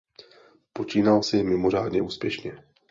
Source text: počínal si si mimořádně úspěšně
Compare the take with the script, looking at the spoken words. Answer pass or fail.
fail